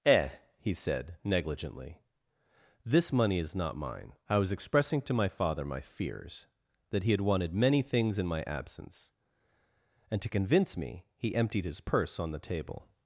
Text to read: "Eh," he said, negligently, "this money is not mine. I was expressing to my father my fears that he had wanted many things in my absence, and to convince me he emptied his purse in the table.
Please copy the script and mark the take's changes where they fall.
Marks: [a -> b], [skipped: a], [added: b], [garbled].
"Eh," he said, negligently, "this money is not mine. I was expressing to my father my fears that he had wanted many things in my absence, and to convince me he emptied his purse [in -> on] the table.